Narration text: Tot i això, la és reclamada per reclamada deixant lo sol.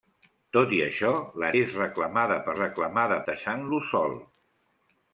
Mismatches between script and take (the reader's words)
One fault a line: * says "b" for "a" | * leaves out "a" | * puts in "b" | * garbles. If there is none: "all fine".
all fine